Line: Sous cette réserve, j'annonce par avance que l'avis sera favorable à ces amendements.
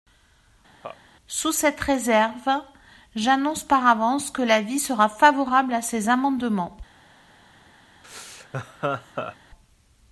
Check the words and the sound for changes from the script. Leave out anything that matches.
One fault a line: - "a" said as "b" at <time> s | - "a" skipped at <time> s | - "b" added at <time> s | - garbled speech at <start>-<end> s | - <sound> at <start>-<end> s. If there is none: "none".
- laugh at 0.8-1.0 s
- laugh at 8.0-9.4 s